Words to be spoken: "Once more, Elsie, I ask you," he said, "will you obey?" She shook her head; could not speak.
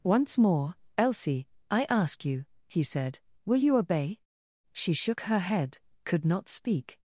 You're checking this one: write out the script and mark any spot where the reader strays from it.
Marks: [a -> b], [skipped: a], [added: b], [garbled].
"Once more, Elsie, I ask you," he said, "will you obey?" She shook her head; could not speak.